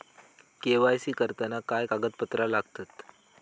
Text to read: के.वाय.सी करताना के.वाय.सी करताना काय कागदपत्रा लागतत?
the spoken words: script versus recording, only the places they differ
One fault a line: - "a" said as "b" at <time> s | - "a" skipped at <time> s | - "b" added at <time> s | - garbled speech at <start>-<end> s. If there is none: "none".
- "के.वाय.सी करताना" skipped at 1.6 s